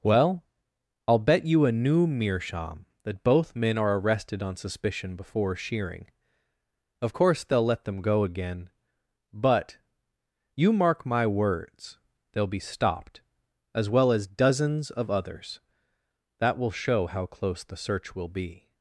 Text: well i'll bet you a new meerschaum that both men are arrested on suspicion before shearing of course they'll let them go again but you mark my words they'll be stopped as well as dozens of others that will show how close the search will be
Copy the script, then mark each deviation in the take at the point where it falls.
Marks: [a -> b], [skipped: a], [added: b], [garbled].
well i'll bet you a new meerschaum that both men are arrested on suspicion before shearing of course they'll let them go again but you mark my words they'll be stopped as well as dozens of others that will show how close the search will be